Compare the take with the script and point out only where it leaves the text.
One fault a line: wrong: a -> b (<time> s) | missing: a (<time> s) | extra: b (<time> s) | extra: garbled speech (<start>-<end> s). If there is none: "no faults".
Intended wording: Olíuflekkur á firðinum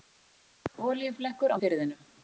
no faults